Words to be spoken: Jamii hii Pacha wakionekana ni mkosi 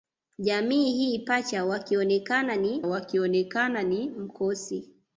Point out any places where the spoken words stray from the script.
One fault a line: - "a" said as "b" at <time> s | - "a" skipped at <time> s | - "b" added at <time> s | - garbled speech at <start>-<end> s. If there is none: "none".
- "wakionekana ni" added at 2.9 s